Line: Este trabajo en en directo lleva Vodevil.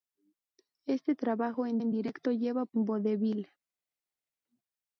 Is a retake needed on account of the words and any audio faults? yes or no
no